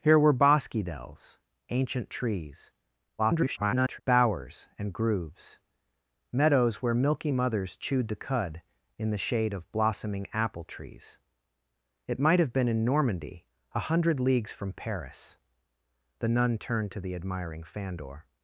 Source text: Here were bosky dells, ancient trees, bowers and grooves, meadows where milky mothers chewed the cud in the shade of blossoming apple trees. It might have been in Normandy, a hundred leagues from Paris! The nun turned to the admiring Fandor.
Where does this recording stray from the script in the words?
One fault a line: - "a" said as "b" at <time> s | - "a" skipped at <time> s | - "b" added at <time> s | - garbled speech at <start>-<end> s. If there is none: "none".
- garbled speech at 3.2-4.0 s